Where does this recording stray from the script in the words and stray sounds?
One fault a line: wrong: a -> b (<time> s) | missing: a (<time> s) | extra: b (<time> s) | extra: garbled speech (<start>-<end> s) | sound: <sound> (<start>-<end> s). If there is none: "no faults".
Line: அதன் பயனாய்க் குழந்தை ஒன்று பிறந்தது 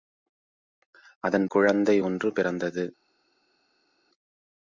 missing: பயனாய்க் (1.4 s)